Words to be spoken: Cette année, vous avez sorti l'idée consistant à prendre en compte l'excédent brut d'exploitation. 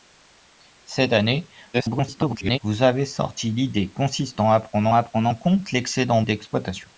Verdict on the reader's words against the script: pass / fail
fail